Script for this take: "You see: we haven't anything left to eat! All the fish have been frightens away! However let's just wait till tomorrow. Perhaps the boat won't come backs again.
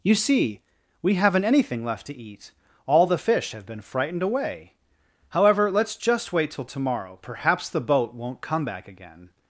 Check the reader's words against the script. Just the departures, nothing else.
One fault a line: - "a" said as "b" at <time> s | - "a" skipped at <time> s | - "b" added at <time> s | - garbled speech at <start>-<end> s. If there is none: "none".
- "frightens" said as "frightened" at 3.8 s
- "backs" said as "back" at 8.7 s